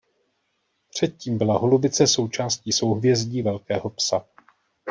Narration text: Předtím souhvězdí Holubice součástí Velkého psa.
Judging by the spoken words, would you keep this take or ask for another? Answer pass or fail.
fail